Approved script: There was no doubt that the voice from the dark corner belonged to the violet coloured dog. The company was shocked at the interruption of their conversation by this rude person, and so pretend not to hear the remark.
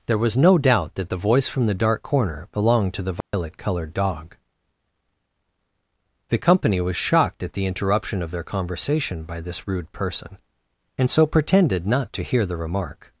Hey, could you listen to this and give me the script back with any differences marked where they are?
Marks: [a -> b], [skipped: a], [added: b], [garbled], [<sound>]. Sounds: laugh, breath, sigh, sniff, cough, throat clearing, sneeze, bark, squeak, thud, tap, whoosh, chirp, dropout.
There was no doubt that the voice from the dark corner belonged to the violet [dropout] coloured dog. The company was shocked at the interruption of their conversation by this rude person, and so [pretend -> pretended] not to hear the remark.